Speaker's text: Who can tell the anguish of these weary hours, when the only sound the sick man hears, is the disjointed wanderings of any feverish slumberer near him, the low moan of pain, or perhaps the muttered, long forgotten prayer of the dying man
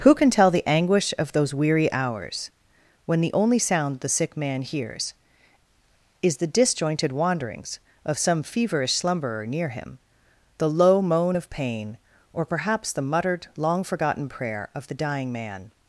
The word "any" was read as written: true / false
false